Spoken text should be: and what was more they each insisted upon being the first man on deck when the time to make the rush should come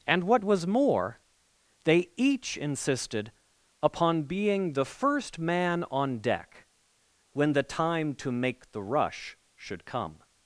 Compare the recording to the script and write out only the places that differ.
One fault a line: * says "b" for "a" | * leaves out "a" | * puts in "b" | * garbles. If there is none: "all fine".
all fine